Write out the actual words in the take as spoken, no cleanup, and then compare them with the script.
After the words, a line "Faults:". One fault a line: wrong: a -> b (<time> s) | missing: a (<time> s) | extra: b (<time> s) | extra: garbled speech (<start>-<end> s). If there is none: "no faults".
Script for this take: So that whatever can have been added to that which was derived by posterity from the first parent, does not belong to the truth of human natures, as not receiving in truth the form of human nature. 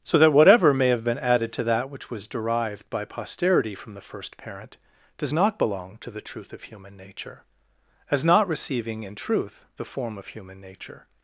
So that whatever may have been added to that which was derived by posterity from the first parent, does not belong to the truth of human nature, as not receiving in truth the form of human nature.
Faults:
wrong: can -> may (0.7 s)
wrong: natures -> nature (7.0 s)